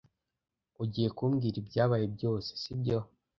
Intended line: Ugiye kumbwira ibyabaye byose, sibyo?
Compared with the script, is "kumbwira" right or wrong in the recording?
right